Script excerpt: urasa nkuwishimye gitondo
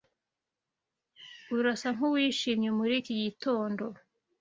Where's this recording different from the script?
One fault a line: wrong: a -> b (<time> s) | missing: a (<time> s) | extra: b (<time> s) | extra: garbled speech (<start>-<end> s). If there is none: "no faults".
extra: muri iki (2.8 s)